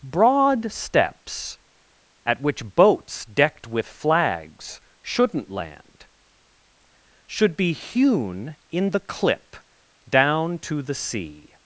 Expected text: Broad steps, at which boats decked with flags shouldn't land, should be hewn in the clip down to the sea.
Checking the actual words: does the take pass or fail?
pass